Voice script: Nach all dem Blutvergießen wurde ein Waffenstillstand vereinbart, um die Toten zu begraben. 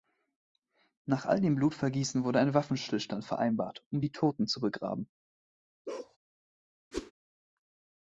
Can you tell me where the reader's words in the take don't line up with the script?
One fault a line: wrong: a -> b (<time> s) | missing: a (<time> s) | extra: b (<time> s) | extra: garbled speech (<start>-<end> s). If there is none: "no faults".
no faults